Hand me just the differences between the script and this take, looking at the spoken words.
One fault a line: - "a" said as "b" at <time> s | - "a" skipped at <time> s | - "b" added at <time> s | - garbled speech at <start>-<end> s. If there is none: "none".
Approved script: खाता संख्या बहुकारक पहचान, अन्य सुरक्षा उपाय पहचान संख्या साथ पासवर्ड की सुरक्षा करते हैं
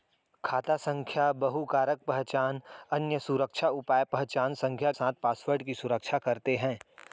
none